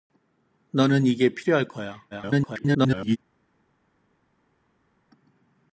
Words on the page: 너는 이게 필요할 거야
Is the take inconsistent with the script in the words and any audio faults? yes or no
yes